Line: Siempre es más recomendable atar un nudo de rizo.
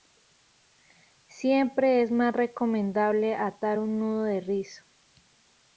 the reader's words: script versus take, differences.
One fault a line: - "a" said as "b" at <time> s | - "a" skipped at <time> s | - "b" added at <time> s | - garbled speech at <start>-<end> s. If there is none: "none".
none